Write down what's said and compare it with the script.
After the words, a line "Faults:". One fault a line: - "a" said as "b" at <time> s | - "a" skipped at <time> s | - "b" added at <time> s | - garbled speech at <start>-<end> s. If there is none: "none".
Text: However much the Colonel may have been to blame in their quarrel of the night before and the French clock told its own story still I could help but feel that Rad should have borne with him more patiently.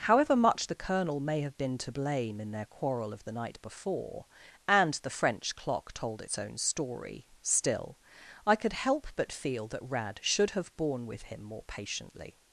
However much the Colonel may have been to blame in their quarrel of the night before and the French clock told its own story still I could help but feel that Rad should have borne with him more patiently.
Faults:
none